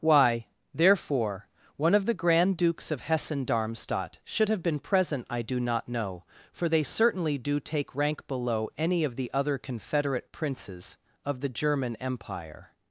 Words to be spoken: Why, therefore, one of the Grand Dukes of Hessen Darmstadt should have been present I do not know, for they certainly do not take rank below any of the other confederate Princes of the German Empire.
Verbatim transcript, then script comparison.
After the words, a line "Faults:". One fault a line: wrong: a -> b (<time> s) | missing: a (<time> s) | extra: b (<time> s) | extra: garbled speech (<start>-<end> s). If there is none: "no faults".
Why, therefore, one of the Grand Dukes of Hessen Darmstadt should have been present I do not know, for they certainly do take rank below any of the other confederate Princes of the German Empire.
Faults:
missing: not (7.6 s)